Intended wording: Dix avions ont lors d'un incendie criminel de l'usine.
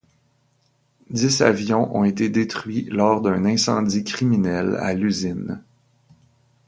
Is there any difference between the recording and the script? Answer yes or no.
yes